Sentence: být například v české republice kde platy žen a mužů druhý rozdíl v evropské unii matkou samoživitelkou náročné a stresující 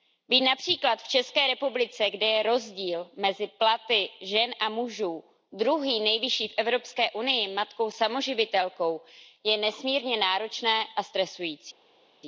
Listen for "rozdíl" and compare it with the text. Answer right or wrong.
wrong